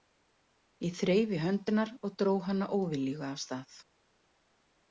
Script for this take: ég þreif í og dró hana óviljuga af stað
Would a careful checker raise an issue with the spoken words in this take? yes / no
yes